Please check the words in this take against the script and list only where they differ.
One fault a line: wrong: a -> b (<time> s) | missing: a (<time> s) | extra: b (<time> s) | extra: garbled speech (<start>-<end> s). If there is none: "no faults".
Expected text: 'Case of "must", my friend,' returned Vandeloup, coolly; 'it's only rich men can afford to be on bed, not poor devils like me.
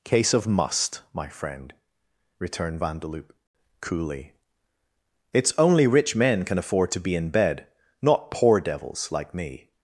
wrong: on -> in (7.2 s)